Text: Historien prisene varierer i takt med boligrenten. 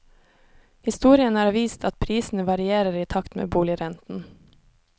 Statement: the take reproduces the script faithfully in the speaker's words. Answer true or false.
false